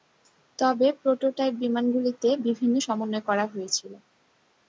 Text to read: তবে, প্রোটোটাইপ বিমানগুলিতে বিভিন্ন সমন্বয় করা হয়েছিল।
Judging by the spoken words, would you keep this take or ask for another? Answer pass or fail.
pass